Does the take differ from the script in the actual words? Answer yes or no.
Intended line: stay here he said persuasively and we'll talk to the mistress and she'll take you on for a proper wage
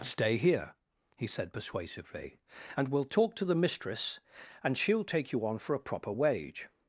no